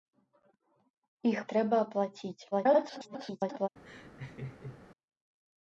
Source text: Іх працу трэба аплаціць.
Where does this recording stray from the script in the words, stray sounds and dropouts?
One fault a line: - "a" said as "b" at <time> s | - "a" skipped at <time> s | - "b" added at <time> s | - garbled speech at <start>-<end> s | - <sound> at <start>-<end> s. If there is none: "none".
- "працу" skipped at 1.4 s
- garbled speech at 2.5-3.7 s
- laugh at 3.8-4.8 s